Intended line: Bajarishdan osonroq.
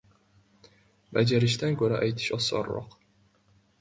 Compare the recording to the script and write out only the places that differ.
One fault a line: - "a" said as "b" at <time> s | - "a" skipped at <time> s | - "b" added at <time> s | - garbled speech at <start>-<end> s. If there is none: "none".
- "ko‘ra aytish" added at 1.8 s